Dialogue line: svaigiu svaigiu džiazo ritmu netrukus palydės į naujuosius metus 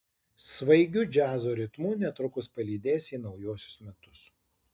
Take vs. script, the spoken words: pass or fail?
fail